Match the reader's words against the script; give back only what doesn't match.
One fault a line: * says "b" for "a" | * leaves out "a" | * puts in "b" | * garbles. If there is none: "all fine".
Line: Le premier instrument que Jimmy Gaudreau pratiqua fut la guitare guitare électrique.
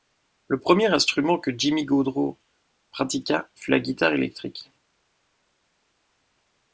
* leaves out "guitare"